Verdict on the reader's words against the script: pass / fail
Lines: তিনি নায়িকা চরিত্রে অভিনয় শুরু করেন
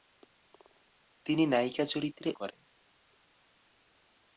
fail